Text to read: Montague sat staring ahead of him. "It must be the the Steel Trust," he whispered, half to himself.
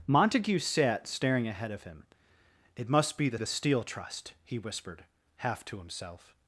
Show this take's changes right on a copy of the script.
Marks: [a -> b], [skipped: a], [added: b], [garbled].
Montague sat staring ahead of him. "It must be the the Steel Trust," he whispered, half to himself.